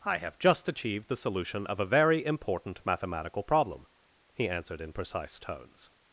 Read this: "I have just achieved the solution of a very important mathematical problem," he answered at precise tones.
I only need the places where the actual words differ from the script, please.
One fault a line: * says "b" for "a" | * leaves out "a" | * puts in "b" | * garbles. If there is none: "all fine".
* says "in" for "at"